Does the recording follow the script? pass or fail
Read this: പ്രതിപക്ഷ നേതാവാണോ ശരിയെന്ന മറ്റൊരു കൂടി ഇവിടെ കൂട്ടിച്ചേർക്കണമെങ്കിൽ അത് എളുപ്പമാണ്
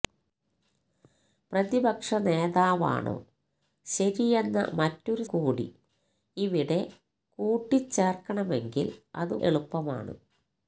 pass